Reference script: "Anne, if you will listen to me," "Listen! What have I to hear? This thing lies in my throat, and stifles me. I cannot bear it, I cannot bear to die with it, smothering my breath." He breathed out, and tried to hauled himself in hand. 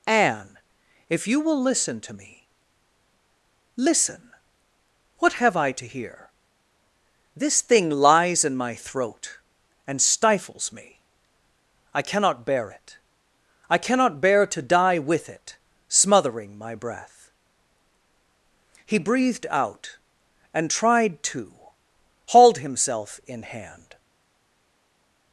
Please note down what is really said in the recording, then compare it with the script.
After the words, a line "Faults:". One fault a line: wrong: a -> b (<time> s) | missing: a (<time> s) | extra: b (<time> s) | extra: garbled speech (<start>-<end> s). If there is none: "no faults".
"Anne, if you will listen to me," "Listen! What have I to hear? This thing lies in my throat, and stifles me. I cannot bear it, I cannot bear to die with it, smothering my breath." He breathed out, and tried to hauled himself in hand.
Faults:
no faults